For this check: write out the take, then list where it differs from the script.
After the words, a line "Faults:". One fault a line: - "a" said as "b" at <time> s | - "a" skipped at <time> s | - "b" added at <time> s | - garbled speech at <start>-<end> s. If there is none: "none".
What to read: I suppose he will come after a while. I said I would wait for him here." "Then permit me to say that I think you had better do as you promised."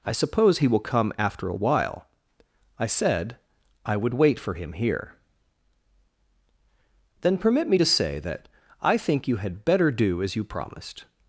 I suppose he will come after a while. I said I would wait for him here." "Then permit me to say that I think you had better do as you promised."
Faults:
none